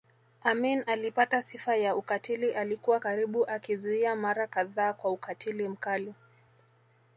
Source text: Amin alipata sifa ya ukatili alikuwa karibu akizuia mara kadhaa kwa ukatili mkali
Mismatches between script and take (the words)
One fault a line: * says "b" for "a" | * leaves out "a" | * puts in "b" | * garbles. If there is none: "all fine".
all fine